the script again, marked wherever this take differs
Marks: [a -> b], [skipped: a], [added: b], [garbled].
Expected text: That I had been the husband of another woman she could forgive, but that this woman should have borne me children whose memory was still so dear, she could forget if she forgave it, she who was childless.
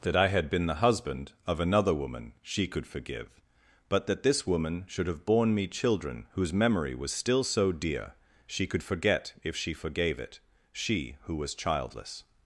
That I had been the husband of another woman she could forgive, but that this woman should have borne me children whose memory was still so dear, she could forget if she forgave it, she who was childless.